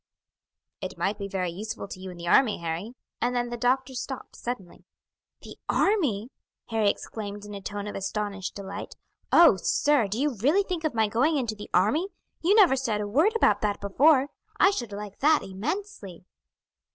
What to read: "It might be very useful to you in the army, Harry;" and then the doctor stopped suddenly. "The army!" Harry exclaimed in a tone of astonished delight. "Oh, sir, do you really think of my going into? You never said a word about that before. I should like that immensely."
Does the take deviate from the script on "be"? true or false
false